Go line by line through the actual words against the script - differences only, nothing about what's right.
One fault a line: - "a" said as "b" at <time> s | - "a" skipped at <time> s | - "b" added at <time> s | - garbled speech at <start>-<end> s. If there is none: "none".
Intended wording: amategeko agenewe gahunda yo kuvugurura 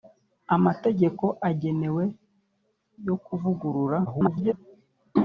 - "gahunda" skipped at 2.0 s
- garbled speech at 4.1-4.5 s